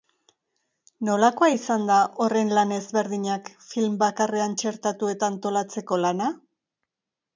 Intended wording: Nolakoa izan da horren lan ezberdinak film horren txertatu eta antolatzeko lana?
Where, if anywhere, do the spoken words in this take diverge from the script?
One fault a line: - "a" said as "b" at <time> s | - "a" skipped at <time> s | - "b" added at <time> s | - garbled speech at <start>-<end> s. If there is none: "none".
- "horren" said as "bakarrean" at 4.1 s